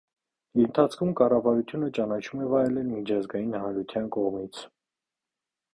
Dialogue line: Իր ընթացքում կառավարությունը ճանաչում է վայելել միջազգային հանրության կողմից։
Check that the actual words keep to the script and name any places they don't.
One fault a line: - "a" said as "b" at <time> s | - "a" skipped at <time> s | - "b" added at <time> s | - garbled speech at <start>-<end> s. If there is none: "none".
none